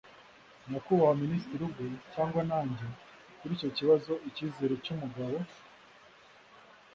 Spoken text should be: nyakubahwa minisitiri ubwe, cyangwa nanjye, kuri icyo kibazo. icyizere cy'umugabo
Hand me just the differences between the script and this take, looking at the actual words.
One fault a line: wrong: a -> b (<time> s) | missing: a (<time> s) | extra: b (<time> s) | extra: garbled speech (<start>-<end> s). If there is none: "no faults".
no faults